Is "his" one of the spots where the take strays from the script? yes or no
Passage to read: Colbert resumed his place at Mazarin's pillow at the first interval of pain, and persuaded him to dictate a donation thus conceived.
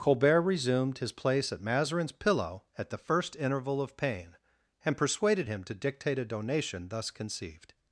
no